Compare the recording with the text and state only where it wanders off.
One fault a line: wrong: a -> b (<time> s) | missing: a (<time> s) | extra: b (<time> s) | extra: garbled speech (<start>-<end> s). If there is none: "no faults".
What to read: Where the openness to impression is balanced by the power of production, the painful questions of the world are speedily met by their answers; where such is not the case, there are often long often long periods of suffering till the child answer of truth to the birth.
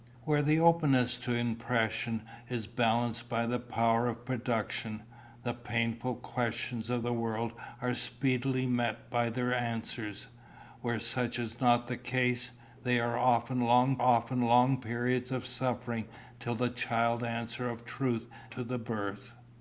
no faults